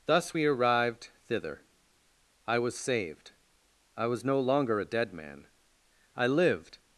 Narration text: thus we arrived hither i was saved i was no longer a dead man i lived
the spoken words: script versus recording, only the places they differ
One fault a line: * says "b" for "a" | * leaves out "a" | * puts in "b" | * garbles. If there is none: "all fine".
* says "thither" for "hither"